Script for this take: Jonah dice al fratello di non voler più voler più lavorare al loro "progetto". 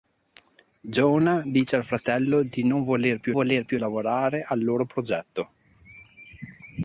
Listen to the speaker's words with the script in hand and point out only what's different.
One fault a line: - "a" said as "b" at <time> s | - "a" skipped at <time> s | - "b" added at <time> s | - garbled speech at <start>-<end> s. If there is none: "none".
none